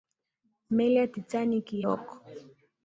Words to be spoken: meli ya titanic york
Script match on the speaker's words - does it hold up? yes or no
yes